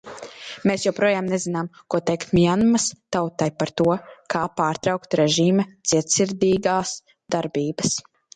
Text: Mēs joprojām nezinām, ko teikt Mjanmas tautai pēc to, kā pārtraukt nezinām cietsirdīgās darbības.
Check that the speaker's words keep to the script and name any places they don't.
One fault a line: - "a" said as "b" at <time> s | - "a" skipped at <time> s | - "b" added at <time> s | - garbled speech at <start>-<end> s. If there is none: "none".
- "pēc" said as "par" at 3.6 s
- "nezinām" said as "režīma" at 5.2 s